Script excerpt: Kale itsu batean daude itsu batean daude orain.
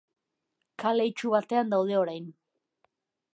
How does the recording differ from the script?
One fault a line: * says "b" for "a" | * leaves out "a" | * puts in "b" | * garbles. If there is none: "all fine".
* leaves out "itsu batean daude"